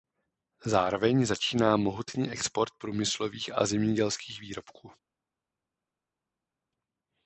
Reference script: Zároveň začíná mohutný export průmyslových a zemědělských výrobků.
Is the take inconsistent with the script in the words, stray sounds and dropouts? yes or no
no